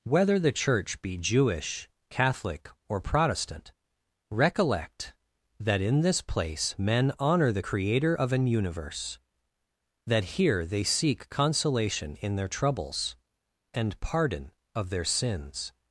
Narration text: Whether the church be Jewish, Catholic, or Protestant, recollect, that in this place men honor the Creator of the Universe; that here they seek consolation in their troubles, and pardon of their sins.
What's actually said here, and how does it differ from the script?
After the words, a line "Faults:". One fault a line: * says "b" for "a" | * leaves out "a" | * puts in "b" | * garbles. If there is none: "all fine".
Whether the church be Jewish, Catholic, or Protestant, recollect, that in this place men honor the Creator of an Universe; that here they seek consolation in their troubles, and pardon of their sins.
Faults:
* says "an" for "the"